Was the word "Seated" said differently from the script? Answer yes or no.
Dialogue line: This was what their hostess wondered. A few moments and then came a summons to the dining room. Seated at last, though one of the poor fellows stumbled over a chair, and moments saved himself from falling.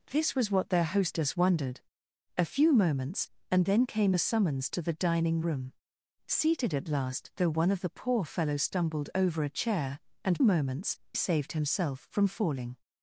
no